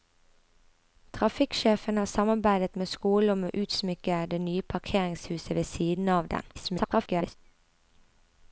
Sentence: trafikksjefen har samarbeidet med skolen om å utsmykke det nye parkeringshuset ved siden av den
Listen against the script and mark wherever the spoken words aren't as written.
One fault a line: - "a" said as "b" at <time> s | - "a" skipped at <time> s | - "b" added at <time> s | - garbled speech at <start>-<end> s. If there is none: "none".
- garbled speech at 6.5-7.3 s